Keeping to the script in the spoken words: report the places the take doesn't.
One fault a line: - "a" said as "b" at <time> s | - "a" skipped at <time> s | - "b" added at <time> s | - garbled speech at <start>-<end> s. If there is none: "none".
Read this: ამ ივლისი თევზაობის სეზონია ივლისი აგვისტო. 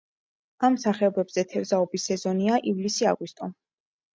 - "ივლისი" said as "სახეობებზე" at 0.8 s